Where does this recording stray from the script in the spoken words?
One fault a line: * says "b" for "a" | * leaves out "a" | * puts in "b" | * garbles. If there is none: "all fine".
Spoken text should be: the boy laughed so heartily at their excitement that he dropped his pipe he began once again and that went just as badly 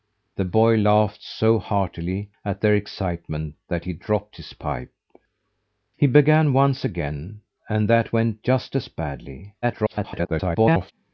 * garbles